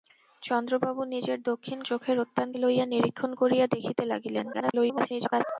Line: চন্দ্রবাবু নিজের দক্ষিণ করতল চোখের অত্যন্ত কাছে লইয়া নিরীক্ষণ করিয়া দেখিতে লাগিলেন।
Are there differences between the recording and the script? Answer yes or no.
yes